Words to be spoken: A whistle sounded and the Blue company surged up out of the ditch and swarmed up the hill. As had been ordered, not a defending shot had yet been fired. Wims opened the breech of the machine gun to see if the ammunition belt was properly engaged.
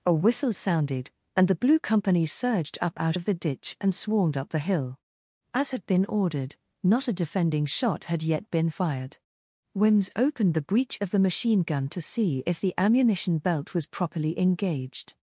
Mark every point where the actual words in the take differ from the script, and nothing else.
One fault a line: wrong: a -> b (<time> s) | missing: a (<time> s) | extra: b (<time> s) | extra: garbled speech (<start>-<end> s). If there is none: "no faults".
no faults